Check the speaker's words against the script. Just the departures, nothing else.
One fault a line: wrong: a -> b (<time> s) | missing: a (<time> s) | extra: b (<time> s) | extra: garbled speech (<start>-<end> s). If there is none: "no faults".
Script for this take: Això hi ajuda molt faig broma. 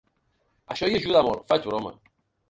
no faults